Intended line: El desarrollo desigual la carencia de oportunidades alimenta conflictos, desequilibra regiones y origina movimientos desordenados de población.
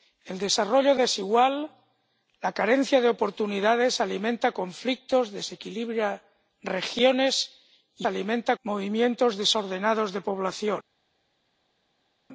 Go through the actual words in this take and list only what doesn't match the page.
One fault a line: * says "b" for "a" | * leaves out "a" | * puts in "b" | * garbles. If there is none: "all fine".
* says "alimenta" for "origina"